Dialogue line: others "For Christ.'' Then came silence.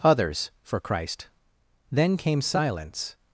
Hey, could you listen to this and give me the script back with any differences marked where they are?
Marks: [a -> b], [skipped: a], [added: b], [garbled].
others "For Christ.'' Then came silence.